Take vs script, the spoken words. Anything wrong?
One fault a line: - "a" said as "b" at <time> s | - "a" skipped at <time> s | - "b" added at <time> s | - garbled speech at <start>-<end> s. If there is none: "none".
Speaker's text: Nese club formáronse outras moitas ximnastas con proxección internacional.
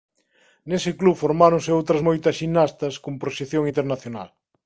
none